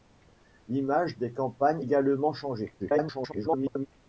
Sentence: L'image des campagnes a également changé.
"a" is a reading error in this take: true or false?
true